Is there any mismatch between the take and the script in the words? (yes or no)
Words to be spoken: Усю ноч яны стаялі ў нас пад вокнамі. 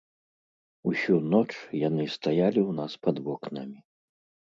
no